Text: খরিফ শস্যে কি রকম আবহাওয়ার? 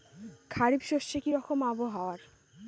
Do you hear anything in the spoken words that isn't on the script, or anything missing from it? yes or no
no